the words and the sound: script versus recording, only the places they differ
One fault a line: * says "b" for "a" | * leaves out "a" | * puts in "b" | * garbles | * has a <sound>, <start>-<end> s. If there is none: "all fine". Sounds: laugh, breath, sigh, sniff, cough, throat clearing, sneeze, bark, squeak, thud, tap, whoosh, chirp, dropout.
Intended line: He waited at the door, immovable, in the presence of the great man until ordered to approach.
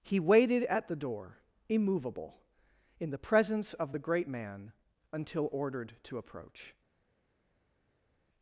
all fine